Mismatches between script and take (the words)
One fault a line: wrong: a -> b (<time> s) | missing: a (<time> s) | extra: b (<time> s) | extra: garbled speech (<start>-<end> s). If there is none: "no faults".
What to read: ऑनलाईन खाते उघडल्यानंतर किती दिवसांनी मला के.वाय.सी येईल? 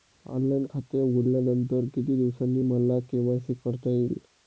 extra: करता (3.6 s)